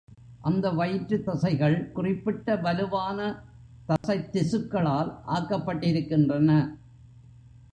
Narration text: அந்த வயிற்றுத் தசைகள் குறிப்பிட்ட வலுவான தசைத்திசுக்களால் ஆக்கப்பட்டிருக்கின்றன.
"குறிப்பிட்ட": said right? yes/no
yes